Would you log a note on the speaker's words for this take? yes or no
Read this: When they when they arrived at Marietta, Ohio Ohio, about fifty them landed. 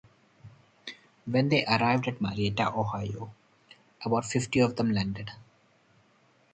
yes